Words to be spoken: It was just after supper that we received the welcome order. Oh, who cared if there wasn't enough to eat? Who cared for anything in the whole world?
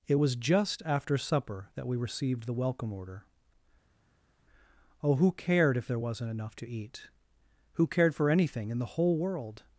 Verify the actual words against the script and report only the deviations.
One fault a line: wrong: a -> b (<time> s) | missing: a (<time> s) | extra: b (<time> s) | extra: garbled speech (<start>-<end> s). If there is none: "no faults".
no faults